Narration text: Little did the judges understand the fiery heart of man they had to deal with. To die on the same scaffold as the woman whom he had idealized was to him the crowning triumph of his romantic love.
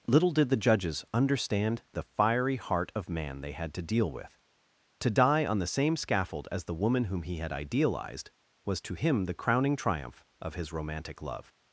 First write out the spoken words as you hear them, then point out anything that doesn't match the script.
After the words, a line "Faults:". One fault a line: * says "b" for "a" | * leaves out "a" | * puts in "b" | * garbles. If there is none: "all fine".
Little did the judges understand the fiery heart of man they had to deal with. To die on the same scaffold as the woman whom he had idealized was to him the crowning triumph of his romantic love.
Faults:
all fine